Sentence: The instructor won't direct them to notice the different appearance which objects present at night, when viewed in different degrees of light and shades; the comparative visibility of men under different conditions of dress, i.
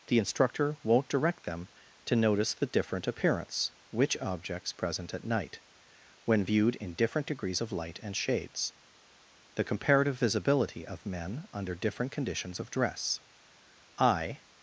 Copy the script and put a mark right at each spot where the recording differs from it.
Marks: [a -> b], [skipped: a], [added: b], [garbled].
The instructor won't direct them to notice the different appearance which objects present at night, when viewed in different degrees of light and shades; the comparative visibility of men under different conditions of dress, i.